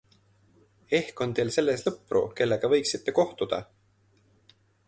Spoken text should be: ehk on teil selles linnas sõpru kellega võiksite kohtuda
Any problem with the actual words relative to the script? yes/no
yes